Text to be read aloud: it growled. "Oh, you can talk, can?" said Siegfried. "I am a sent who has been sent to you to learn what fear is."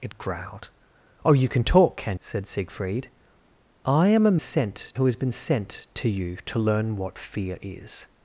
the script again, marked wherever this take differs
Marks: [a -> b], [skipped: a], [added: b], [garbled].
it growled. "Oh, you can talk, can?" said Siegfried. "I am a sent who has been sent to you to learn what fear is."